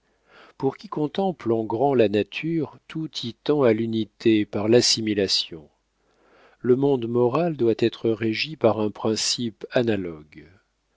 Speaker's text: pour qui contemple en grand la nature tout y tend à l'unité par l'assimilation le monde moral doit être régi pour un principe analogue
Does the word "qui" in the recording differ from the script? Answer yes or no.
no